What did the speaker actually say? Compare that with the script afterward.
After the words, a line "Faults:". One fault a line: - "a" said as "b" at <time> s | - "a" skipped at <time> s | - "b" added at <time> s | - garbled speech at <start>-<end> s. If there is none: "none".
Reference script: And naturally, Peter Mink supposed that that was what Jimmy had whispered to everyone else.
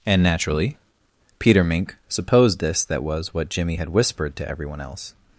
And naturally, Peter Mink supposed this that was what Jimmy had whispered to everyone else.
Faults:
- "that" said as "this" at 2.6 s